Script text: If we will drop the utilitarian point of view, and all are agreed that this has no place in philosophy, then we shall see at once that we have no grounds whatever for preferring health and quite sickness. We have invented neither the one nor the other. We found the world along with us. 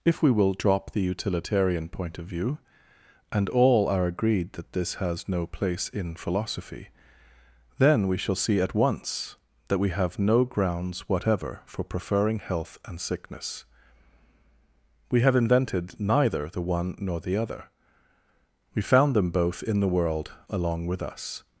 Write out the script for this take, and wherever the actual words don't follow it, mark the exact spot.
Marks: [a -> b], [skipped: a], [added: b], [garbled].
If we will drop the utilitarian point of view, and all are agreed that this has no place in philosophy, then we shall see at once that we have no grounds whatever for preferring health and [skipped: quite] sickness. We have invented neither the one nor the other. We found [added: them both in] the world along with us.